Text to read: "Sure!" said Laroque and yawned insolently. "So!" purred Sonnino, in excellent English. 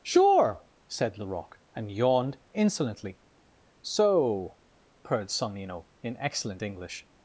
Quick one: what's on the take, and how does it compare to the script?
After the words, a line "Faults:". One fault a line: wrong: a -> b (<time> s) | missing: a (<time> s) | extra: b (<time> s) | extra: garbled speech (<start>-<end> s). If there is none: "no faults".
"Sure!" said Laroque and yawned insolently. "So!" purred Sonnino, in excellent English.
Faults:
no faults